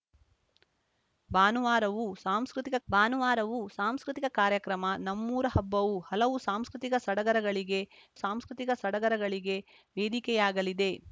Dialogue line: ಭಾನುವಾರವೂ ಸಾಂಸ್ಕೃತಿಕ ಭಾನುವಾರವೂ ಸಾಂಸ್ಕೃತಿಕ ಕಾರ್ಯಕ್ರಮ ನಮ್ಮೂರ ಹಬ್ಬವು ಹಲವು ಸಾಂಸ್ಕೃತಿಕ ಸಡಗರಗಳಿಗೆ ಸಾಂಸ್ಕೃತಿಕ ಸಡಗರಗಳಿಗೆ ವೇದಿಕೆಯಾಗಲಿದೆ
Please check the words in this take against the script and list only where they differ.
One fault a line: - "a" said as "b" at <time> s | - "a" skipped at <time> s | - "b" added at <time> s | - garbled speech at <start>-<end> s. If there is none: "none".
none